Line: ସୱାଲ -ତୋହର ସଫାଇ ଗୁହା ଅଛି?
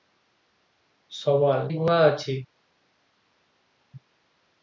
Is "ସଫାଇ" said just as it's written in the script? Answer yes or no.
no